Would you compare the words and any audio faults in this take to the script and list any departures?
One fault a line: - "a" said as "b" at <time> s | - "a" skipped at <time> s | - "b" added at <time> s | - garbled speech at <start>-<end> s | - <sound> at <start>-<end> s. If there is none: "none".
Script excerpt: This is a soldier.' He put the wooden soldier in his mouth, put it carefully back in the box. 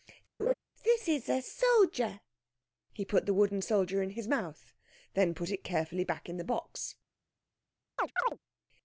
- laugh at 0.4-0.5 s
- "then" added at 5.1 s
- chirp at 8.0-8.4 s